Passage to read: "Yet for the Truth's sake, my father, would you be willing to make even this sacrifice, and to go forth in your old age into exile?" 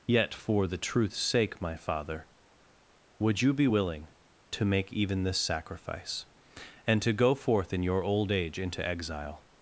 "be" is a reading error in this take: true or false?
false